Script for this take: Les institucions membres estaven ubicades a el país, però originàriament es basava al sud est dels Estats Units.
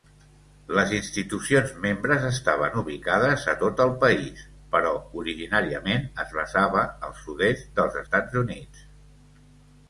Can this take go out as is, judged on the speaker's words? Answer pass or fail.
fail